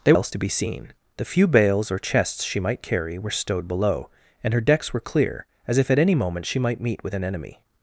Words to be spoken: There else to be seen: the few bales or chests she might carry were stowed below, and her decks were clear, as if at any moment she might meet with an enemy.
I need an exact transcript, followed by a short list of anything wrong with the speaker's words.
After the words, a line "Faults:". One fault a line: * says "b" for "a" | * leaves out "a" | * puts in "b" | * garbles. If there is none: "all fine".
There else to be seen: the few bales or chests she might carry were stowed below, and her decks were clear, as if at any moment she might meet with an enemy.
Faults:
all fine